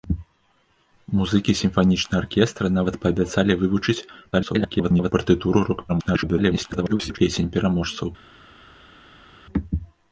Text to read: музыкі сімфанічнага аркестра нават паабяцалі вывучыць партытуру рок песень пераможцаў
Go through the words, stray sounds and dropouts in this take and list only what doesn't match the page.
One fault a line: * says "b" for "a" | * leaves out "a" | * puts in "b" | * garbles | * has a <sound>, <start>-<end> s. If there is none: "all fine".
* garbles
* garbles